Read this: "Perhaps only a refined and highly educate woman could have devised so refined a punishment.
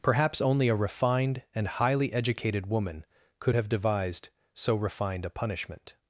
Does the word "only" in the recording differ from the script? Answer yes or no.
no